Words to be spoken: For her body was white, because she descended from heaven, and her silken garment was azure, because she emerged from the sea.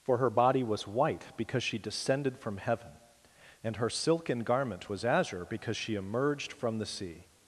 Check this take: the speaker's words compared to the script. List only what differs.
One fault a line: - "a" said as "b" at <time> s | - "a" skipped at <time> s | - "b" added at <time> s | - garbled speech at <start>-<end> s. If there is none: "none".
none